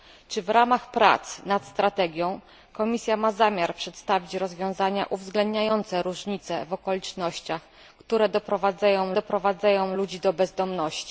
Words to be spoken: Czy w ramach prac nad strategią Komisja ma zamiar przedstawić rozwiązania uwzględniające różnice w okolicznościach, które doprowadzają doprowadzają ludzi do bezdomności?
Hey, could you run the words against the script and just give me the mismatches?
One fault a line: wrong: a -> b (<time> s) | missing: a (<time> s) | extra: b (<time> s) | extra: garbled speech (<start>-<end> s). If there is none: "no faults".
no faults